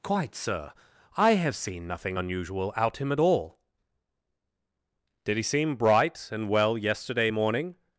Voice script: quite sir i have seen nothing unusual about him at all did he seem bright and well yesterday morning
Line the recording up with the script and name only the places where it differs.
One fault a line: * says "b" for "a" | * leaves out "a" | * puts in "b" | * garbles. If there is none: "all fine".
* says "out" for "about"